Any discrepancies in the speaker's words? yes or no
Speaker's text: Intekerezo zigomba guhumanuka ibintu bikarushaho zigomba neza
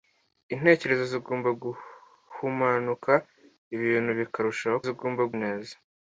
no